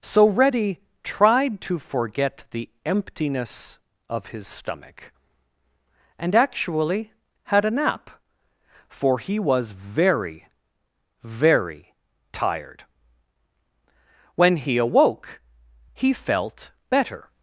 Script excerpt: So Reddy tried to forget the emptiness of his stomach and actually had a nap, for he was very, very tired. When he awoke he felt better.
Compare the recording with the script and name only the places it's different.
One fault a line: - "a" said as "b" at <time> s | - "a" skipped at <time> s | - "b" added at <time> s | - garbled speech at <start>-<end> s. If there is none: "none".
none